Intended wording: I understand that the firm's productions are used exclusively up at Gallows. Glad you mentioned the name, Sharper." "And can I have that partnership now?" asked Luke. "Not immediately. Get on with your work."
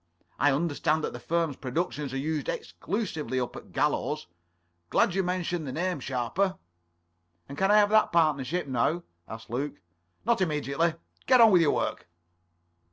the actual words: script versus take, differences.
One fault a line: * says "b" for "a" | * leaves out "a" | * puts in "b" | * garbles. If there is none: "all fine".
all fine